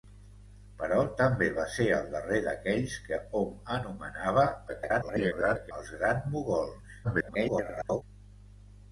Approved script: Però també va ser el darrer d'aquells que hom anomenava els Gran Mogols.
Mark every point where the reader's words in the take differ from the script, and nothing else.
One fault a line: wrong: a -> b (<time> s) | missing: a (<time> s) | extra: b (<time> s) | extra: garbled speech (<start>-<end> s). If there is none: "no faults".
extra: garbled speech (4.7-5.7 s)
extra: garbled speech (7.0-8.0 s)